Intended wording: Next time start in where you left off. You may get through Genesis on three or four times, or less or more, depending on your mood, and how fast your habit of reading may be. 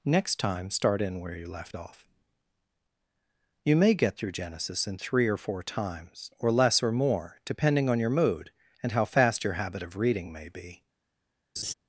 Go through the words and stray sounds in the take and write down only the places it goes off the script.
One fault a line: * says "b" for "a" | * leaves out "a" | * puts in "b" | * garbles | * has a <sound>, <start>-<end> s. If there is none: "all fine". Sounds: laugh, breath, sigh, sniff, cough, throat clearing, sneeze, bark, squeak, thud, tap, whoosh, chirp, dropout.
* says "in" for "on"
* has a laugh, 11.6-11.7 s